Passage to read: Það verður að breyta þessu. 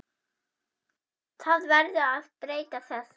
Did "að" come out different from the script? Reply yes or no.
no